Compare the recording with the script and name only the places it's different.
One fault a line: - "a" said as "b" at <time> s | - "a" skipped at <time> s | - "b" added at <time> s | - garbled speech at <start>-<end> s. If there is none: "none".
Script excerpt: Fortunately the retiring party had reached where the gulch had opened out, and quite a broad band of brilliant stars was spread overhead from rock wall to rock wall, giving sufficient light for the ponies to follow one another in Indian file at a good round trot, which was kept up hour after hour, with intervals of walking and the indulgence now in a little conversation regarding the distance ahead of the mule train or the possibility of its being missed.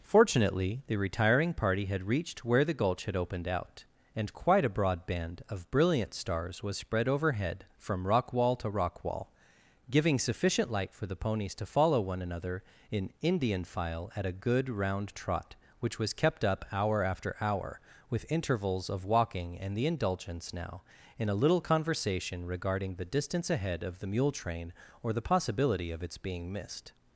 none